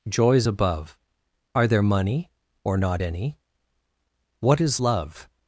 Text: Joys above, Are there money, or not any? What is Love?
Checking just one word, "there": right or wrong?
right